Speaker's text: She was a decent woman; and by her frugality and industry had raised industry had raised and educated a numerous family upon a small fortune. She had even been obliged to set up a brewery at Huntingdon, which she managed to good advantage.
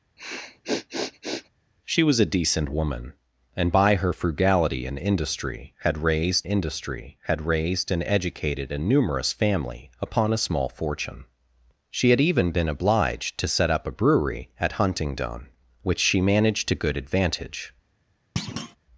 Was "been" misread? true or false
false